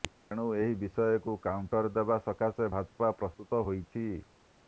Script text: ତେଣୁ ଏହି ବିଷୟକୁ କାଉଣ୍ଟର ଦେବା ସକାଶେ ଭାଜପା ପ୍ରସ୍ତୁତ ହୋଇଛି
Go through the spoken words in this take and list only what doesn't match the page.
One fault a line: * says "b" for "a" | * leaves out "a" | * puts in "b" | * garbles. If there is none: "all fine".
all fine